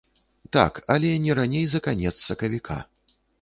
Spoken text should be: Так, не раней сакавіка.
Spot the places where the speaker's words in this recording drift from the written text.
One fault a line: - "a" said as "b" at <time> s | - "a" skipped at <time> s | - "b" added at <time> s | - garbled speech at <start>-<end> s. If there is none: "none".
- "але" added at 0.9 s
- "за канец" added at 1.7 s